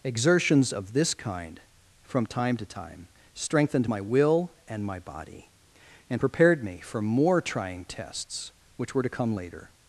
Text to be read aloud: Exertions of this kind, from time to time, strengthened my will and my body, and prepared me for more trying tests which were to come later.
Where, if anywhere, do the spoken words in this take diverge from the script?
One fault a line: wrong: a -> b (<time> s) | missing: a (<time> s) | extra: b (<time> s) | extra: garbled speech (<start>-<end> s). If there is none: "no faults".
no faults